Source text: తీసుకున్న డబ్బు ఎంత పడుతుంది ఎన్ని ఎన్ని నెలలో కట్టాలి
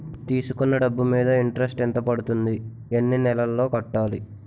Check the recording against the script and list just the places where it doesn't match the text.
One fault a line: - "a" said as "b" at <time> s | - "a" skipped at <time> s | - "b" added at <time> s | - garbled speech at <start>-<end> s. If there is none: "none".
- "మీద ఇంట్రెస్ట్" added at 1.0 s
- "ఎన్ని" skipped at 3.2 s